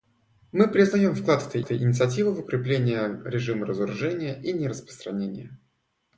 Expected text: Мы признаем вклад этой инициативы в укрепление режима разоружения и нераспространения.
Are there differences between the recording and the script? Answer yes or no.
yes